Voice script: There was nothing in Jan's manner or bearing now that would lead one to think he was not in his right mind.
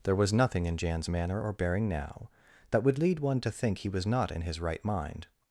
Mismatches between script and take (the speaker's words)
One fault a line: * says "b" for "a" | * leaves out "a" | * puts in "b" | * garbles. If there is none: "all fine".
all fine